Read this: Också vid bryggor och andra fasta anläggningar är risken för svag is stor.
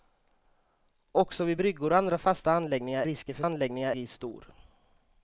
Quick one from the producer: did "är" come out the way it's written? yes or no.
no